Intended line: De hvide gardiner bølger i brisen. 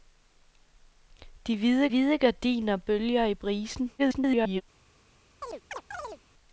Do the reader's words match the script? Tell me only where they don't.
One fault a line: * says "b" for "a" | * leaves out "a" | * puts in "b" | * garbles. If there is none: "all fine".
* puts in "hvide"
* garbles